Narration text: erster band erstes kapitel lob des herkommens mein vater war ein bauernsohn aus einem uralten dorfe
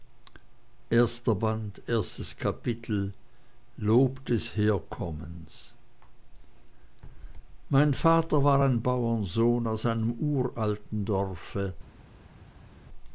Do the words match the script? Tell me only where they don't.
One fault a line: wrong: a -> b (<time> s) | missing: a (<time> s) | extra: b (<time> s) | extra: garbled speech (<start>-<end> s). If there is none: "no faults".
no faults